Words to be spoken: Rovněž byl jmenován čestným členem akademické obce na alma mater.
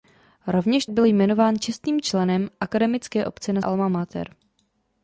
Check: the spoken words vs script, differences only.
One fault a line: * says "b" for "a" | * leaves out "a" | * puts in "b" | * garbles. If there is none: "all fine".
all fine